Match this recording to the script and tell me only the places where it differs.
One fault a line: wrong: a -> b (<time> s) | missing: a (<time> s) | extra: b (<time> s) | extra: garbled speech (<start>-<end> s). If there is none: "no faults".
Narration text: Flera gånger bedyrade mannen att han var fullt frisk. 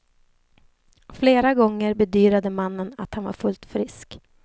no faults